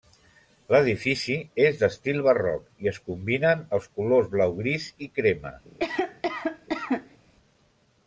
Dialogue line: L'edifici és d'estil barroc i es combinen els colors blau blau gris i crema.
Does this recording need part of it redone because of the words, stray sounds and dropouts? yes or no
yes